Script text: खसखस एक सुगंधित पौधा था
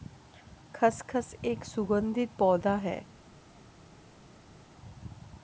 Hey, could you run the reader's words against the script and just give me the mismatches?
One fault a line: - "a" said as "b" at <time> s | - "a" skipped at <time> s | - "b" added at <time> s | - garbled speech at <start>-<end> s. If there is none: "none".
- "था" said as "है" at 2.7 s